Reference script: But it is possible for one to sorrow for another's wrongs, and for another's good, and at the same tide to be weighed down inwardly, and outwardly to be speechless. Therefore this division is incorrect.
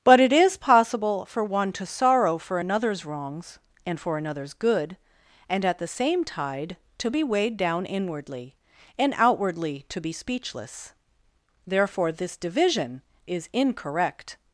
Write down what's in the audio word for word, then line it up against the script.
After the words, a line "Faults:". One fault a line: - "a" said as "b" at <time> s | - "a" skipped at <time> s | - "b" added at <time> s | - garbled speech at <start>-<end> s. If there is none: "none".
But it is possible for one to sorrow for another's wrongs, and for another's good, and at the same tide to be weighed down inwardly, and outwardly to be speechless. Therefore this division is incorrect.
Faults:
none